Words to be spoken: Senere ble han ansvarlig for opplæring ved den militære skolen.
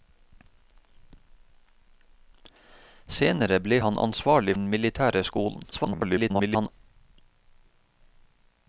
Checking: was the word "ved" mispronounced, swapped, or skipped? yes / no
yes